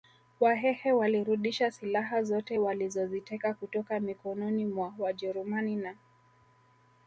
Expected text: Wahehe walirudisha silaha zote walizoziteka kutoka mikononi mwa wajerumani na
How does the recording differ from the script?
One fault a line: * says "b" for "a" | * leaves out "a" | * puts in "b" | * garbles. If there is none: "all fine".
all fine